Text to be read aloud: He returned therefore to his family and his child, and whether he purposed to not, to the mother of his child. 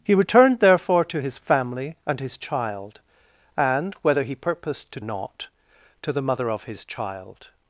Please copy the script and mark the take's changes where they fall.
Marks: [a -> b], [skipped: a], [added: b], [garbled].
He returned therefore to his family and his child, and whether he purposed to not, to the mother of his child.